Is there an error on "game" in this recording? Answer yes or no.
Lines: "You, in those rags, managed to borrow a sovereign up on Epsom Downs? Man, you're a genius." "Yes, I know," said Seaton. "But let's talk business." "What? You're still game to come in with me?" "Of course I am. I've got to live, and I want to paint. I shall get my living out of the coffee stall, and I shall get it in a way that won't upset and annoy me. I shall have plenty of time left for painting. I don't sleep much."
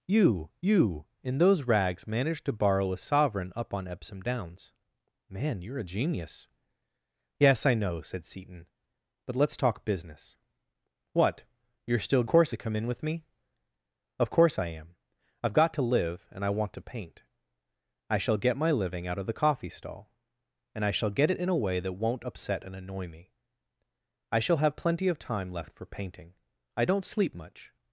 yes